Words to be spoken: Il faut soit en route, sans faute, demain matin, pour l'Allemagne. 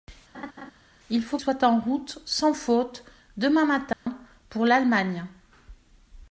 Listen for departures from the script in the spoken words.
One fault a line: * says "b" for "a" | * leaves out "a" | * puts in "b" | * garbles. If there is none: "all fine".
all fine